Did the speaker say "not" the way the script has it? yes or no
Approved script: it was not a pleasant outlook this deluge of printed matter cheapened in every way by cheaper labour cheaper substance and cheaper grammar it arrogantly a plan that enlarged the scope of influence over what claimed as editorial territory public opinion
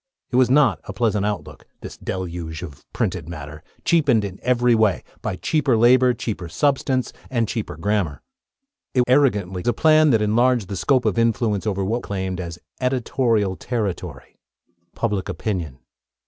yes